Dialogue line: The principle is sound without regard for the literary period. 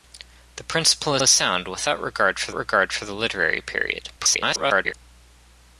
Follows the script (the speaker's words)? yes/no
no